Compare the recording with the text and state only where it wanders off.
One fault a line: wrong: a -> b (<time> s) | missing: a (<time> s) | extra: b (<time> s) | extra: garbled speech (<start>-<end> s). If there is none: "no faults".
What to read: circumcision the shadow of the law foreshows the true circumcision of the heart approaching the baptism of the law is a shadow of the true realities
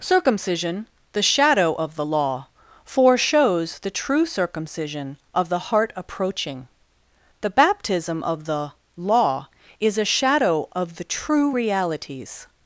no faults